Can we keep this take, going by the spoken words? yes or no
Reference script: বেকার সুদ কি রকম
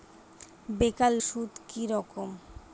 yes